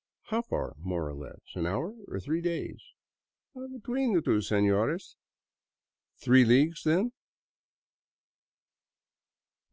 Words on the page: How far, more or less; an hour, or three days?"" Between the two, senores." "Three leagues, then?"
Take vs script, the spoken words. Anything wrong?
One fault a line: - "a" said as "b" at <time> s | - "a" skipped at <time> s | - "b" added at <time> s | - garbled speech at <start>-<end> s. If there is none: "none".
none